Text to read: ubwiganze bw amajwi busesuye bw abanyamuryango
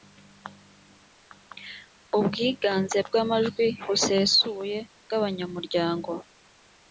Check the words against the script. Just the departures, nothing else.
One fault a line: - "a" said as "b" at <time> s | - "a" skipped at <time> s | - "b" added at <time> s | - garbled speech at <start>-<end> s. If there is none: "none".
none